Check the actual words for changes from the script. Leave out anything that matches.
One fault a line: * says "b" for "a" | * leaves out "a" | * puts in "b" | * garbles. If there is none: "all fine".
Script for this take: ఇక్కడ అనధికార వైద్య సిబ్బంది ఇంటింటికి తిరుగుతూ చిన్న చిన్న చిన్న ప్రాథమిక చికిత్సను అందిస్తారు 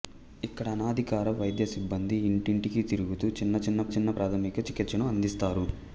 all fine